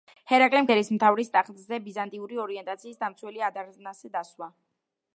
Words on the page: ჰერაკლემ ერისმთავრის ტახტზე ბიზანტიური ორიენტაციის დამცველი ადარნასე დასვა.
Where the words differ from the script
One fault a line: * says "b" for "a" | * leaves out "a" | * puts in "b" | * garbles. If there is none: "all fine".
all fine